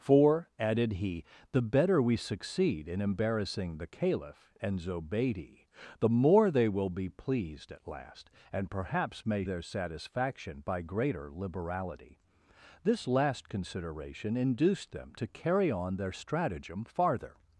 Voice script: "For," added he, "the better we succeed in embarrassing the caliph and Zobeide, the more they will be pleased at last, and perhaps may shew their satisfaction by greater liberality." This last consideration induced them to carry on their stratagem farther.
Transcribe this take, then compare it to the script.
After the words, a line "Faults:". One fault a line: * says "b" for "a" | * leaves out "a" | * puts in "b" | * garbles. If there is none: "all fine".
"For," added he, "the better we succeed in embarrassing the caliph and Zobeide, the more they will be pleased at last, and perhaps may their satisfaction by greater liberality." This last consideration induced them to carry on their stratagem farther.
Faults:
* leaves out "shew"